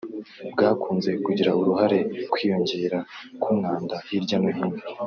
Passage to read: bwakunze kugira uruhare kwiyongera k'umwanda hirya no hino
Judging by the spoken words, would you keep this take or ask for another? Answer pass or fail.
pass